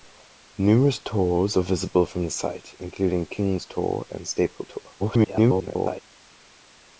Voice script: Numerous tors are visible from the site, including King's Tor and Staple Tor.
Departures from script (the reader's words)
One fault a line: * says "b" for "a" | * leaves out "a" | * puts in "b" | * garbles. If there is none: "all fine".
* garbles